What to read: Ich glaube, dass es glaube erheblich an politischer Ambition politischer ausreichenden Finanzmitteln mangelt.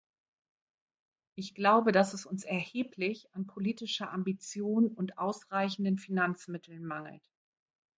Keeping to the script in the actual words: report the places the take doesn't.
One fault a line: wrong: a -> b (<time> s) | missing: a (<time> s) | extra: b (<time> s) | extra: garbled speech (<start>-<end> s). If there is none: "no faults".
wrong: glaube -> uns (2.2 s)
wrong: politischer -> und (4.9 s)